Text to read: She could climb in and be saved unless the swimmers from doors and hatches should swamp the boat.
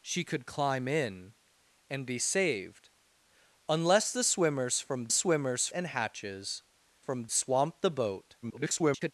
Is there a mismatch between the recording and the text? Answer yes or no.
yes